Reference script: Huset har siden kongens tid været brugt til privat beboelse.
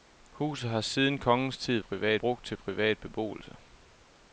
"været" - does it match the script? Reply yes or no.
no